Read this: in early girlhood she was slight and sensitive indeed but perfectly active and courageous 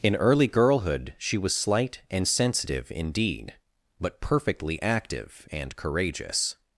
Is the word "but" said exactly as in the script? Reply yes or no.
yes